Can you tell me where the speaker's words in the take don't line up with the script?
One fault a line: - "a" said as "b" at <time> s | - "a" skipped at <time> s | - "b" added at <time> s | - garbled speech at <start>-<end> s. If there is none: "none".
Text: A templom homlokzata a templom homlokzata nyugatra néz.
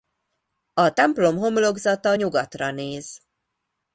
- "a templom homlokzata" skipped at 2.1 s